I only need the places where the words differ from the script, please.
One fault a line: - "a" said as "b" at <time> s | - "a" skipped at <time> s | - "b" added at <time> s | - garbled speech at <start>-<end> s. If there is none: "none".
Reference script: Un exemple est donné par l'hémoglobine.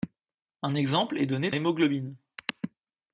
- "par" skipped at 1.5 s